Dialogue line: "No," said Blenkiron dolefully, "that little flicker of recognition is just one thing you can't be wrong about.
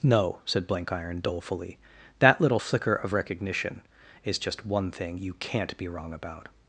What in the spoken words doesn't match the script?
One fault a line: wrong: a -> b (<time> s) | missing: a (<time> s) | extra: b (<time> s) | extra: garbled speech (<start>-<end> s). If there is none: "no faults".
no faults